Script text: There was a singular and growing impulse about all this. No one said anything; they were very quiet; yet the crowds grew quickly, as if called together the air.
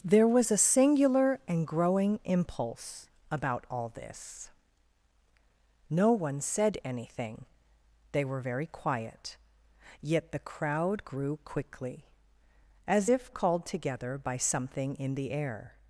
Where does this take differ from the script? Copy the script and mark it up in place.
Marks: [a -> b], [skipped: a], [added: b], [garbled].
There was a singular and growing impulse about all this. No one said anything; they were very quiet; yet the [crowds -> crowd] grew quickly, as if called together [added: by something in] the air.